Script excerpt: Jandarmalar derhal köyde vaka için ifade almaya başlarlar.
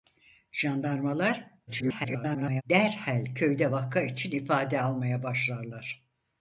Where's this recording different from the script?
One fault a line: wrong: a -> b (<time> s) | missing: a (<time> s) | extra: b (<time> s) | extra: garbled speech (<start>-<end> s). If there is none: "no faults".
extra: garbled speech (1.7-2.6 s)